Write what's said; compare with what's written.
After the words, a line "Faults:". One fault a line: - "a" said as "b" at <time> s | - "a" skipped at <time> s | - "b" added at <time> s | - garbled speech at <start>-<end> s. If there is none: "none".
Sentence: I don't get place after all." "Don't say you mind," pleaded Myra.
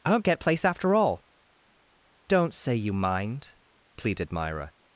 I don't get place after all." "Don't say you mind," pleaded Myra.
Faults:
none